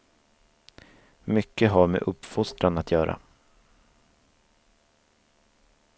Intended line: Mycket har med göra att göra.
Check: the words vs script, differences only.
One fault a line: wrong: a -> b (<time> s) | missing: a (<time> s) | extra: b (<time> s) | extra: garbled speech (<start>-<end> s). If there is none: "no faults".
wrong: göra -> uppfostran (2.0 s)